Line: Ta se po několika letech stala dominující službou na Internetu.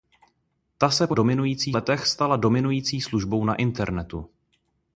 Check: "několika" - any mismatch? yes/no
yes